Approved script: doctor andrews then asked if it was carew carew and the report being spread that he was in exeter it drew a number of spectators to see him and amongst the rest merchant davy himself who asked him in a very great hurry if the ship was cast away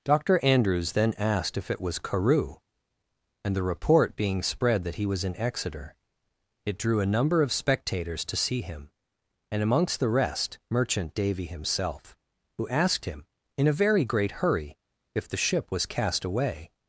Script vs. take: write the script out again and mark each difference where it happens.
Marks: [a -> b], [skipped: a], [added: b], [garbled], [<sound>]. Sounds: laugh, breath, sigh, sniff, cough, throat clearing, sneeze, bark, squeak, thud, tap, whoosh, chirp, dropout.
doctor andrews then asked if it was carew [skipped: carew] and the report being spread that he was in exeter it drew a number of spectators to see him and amongst the rest merchant davy himself who asked him in a very great hurry if the ship was cast away